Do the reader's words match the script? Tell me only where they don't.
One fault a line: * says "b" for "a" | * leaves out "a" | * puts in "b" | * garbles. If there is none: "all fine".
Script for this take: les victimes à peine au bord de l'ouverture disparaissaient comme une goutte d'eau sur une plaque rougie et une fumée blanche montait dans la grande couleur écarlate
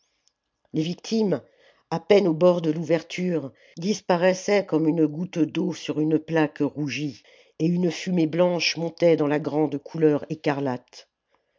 all fine